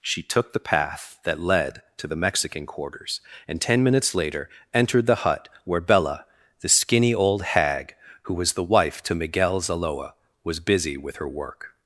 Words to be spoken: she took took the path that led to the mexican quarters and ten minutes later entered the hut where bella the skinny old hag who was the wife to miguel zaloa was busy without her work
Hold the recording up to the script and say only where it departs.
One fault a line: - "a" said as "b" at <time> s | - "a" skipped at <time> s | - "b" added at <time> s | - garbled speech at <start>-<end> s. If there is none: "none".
- "took" skipped at 0.5 s
- "without" said as "with" at 11.0 s